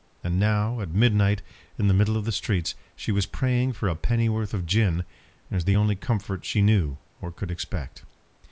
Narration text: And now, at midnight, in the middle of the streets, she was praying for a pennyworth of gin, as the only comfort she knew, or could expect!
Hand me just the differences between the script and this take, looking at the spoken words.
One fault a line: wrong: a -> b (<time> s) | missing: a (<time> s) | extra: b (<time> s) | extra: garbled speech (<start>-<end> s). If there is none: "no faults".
no faults